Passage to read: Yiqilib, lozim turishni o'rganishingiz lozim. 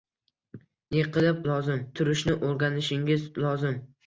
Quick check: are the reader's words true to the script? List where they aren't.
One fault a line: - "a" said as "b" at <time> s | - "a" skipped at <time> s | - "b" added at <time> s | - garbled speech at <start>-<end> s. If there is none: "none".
none